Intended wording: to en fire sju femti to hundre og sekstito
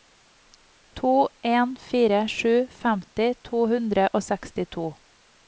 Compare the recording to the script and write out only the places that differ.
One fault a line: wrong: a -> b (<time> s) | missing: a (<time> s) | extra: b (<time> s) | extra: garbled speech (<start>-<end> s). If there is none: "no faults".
no faults